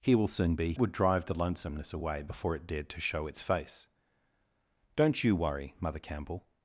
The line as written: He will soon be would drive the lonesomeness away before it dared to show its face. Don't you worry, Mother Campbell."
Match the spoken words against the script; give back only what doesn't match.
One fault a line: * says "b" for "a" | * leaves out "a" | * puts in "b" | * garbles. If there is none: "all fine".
all fine